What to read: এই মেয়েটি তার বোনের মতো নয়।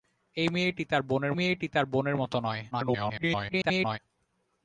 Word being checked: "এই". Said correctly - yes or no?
yes